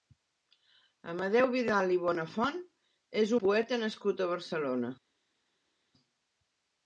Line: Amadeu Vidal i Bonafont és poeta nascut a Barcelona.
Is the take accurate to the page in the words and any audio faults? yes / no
yes